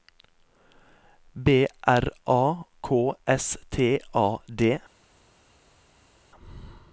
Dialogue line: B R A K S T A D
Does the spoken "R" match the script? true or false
true